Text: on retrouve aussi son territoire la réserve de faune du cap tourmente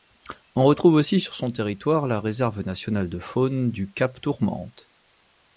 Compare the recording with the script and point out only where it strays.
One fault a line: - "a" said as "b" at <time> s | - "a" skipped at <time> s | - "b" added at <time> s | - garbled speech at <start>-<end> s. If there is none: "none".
- "sur" added at 1.2 s
- "nationale" added at 2.6 s